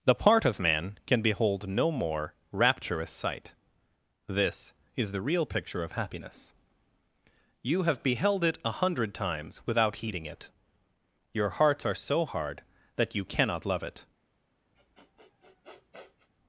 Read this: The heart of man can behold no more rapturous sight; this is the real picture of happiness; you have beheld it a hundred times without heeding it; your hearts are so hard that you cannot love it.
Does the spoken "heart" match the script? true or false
false